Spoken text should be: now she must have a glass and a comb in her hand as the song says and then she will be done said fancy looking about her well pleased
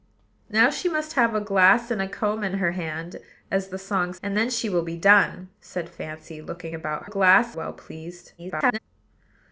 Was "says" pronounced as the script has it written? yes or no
no